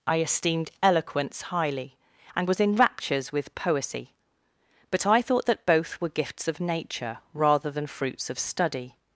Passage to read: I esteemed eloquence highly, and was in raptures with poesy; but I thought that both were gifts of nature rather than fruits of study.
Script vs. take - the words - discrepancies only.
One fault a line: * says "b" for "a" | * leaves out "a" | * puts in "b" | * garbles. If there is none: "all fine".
all fine